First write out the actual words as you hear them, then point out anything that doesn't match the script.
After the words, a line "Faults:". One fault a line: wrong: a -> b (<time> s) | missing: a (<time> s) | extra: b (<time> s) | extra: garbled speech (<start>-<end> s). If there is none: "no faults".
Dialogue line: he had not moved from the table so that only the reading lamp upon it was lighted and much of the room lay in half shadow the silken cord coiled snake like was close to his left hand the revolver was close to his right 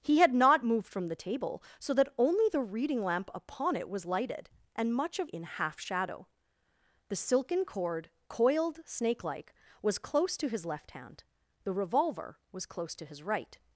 he had not moved from the table so that only the reading lamp upon it was lighted and much of in half shadow the silken cord coiled snake like was close to his left hand the revolver was close to his right
Faults:
missing: the room lay (5.3 s)